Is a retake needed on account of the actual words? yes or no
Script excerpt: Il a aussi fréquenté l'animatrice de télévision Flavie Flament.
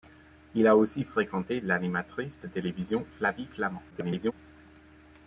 yes